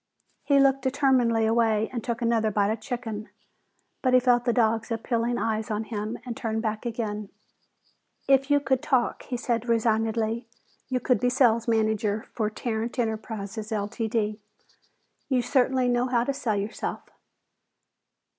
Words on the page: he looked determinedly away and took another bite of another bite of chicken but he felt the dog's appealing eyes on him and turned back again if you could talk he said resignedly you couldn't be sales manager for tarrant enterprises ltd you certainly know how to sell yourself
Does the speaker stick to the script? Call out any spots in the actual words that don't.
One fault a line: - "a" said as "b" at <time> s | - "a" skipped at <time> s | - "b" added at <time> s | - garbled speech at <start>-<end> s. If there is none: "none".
- "another bite of" skipped at 2.8 s
- "couldn't" said as "could" at 11.0 s